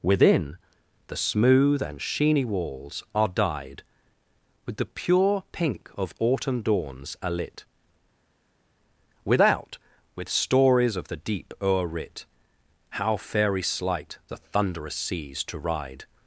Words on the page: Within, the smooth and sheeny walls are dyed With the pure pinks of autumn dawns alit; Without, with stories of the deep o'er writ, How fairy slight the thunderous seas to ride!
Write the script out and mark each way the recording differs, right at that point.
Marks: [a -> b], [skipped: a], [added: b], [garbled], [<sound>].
Within, the smooth and sheeny walls are dyed With the pure [pinks -> pink] of autumn dawns alit; Without, with stories of the deep o'er writ, How fairy slight the thunderous seas to ride!